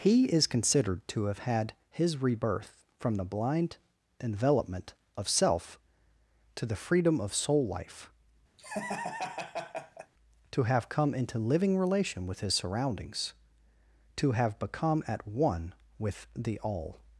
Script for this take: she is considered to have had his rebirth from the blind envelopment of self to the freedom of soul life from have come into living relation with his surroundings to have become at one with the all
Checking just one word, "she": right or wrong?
wrong